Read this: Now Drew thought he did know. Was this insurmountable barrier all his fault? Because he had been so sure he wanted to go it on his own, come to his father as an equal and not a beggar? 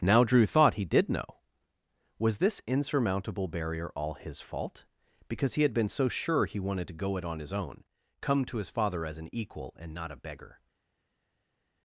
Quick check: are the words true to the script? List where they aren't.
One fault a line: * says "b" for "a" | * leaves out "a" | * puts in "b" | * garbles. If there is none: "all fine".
all fine